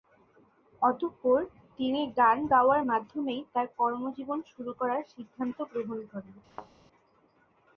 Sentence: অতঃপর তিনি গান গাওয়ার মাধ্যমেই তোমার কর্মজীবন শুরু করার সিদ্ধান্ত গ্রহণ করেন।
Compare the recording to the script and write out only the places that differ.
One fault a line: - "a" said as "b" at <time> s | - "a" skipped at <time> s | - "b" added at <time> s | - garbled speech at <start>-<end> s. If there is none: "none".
- "তোমার" said as "তার" at 3.5 s